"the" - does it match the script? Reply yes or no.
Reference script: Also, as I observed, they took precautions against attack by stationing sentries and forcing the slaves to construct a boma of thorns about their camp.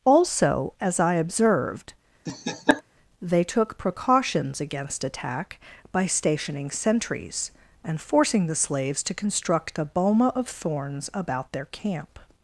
yes